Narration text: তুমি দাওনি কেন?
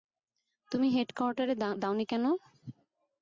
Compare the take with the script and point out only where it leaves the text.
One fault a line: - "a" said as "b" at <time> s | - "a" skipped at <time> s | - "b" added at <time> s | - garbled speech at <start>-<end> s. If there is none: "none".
- "হেডকোয়ার্টারে" added at 0.9 s